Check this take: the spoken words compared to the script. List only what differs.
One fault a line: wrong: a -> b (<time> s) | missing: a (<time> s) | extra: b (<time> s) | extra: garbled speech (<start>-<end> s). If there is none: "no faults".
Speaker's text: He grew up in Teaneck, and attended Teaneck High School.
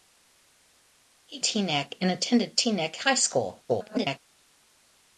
missing: grew up in (1.4 s)
extra: garbled speech (3.7-4.2 s)